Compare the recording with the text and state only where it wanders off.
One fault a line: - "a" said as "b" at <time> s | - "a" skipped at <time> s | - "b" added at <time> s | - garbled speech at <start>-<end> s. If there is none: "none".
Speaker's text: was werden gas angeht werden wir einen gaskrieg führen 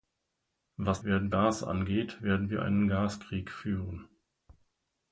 none